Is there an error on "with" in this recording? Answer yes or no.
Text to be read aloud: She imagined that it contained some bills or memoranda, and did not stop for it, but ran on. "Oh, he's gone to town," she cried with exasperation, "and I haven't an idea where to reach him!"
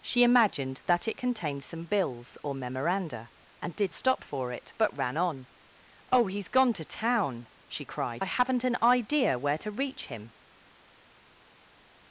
yes